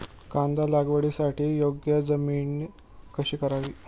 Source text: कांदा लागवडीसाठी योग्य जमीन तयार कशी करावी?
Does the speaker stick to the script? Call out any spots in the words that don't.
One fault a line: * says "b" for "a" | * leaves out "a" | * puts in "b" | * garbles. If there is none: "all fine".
* leaves out "तयार"